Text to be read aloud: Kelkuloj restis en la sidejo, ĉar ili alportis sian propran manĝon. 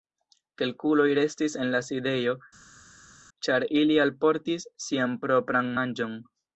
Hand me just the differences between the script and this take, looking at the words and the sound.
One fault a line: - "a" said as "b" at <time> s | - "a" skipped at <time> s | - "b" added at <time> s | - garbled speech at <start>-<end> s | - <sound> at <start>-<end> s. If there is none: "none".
none